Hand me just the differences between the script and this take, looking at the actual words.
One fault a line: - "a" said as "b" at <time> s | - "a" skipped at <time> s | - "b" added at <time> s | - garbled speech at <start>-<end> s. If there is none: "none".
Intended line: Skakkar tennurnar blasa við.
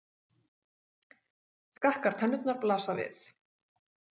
none